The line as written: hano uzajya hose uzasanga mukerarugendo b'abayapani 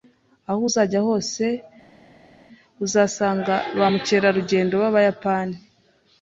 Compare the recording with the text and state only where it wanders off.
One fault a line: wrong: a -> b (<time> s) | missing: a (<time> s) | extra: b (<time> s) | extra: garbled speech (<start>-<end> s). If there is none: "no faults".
wrong: hano -> aho (0.5 s)
extra: ba (3.8 s)